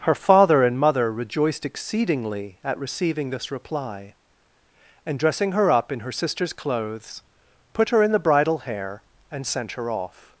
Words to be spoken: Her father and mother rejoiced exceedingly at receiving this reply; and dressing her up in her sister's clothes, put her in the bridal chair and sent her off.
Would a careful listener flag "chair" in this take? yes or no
yes